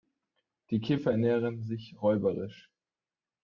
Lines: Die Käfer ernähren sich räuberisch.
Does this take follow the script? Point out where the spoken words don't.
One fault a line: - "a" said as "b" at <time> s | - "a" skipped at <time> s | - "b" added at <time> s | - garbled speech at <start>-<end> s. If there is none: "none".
none